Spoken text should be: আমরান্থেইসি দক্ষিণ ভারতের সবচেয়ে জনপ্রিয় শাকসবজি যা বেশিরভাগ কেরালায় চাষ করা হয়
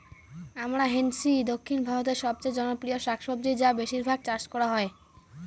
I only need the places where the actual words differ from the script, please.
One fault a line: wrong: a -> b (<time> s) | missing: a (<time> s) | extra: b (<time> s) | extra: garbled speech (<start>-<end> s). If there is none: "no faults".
missing: কেরালায় (4.2 s)